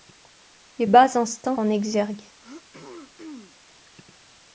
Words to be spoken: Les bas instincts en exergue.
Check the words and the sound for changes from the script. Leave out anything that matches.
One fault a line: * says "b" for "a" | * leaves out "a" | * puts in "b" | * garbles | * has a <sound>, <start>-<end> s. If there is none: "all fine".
* has a throat clearing, 2.4-3.6 s